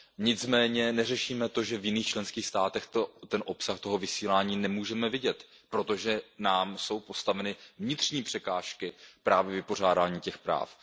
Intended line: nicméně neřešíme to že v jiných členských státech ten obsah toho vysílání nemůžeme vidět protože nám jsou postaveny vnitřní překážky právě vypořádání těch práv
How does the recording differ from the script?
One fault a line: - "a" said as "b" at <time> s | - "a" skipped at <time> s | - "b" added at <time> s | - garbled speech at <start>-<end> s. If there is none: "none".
none